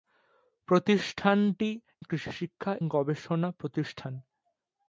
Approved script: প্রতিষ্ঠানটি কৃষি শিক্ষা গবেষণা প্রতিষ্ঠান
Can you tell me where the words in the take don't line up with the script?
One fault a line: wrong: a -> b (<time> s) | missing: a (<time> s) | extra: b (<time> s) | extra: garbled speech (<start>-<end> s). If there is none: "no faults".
no faults